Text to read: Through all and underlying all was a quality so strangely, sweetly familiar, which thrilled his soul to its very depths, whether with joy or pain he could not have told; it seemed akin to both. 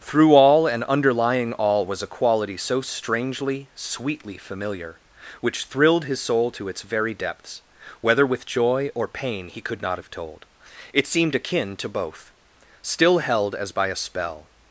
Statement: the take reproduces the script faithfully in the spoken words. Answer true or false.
false